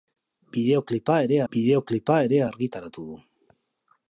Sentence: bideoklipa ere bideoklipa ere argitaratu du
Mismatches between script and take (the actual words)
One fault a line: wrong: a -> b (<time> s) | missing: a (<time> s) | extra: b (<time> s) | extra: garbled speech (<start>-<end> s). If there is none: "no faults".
no faults